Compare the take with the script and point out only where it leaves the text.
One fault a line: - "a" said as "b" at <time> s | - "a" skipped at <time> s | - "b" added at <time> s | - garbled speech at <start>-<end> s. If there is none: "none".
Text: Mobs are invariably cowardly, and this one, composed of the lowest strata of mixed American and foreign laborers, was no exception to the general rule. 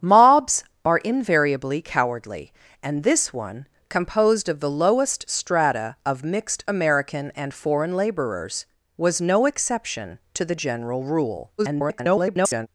- garbled speech at 11.6-12.7 s